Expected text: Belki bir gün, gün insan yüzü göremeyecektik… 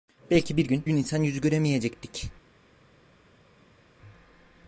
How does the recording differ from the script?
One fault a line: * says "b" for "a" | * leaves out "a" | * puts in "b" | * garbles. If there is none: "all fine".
all fine